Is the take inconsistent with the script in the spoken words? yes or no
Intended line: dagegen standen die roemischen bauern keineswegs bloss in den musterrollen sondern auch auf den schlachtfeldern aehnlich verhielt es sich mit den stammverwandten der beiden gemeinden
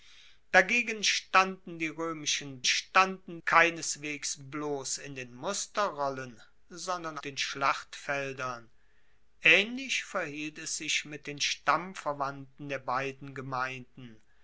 yes